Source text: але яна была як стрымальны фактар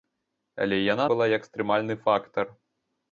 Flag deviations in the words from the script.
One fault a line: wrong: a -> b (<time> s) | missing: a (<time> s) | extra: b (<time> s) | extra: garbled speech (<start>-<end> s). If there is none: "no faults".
no faults